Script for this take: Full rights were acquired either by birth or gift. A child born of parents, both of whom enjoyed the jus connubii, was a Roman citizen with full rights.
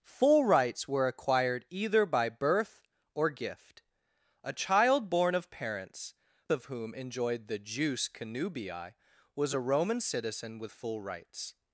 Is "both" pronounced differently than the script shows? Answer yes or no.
yes